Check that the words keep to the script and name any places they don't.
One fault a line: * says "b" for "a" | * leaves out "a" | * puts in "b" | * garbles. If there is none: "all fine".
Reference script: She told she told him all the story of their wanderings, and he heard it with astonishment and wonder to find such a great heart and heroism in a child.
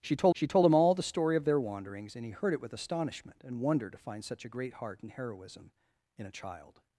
all fine